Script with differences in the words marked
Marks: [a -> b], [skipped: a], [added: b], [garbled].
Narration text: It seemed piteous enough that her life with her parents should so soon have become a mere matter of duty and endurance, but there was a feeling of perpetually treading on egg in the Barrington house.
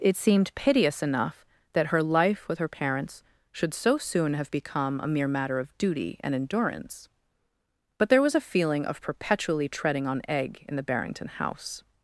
It seemed piteous enough that her life with her parents should so soon have become a mere matter of duty and endurance, but there was a feeling of perpetually treading on egg in the Barrington house.